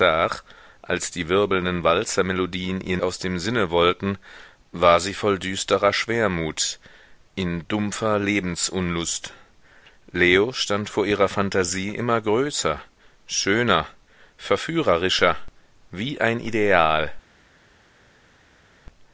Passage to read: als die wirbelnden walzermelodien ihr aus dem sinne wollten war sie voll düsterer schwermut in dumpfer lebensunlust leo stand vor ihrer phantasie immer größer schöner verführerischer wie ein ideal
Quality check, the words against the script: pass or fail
pass